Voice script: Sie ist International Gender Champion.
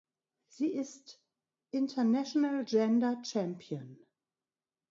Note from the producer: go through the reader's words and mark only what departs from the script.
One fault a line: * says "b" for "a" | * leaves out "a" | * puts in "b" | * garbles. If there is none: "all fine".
all fine